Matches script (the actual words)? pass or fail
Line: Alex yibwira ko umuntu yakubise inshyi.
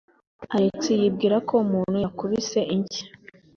pass